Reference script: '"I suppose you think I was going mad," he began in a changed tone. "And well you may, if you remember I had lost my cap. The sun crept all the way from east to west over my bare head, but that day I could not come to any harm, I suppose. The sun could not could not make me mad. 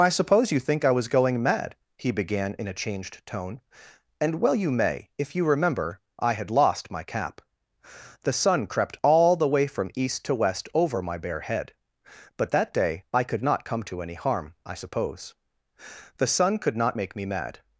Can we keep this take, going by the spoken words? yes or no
no